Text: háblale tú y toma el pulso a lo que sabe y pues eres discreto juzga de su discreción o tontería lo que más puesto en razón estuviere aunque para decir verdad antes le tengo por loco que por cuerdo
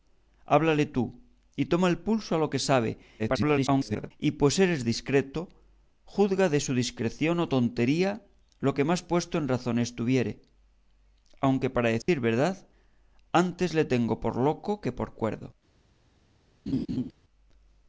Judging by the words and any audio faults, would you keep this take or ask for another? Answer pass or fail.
fail